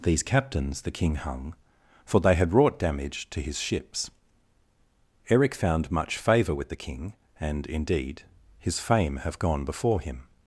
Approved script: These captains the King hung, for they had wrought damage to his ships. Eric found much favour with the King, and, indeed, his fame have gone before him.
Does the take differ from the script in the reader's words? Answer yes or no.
no